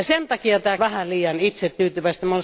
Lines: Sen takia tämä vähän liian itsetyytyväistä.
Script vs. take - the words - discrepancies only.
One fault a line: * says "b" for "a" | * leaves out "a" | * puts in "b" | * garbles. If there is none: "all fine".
all fine